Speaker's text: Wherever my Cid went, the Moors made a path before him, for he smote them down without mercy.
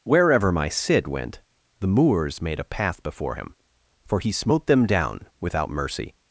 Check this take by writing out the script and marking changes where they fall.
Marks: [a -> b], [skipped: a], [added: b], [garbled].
Wherever my Cid went, the Moors made a path before him, for he smote them down without mercy.